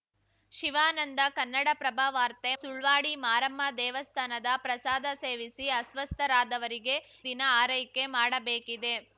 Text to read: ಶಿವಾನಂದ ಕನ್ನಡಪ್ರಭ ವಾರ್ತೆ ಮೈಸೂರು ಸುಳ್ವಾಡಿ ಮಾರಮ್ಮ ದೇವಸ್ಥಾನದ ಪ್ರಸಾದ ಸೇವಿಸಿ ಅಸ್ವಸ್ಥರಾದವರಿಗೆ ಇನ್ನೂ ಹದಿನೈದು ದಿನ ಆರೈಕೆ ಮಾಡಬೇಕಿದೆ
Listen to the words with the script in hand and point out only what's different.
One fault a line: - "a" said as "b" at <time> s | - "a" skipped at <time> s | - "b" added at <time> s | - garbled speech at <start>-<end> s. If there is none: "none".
- "ಮೈಸೂರು" skipped at 2.5 s
- "ಇನ್ನೂ ಹದಿನೈದು" skipped at 7.0 s